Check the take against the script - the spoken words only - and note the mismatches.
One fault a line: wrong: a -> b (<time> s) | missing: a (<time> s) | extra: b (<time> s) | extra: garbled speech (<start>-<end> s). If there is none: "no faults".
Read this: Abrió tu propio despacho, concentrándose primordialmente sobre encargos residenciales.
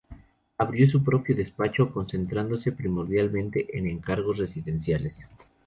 wrong: tu -> su (0.9 s)
wrong: sobre -> en (3.8 s)